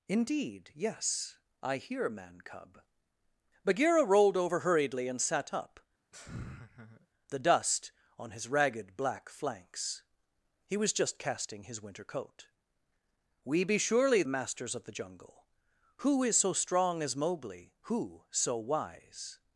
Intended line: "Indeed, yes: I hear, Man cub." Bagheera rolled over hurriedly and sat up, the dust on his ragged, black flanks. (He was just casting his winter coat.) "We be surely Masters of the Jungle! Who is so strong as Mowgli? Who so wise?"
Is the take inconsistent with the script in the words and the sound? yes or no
yes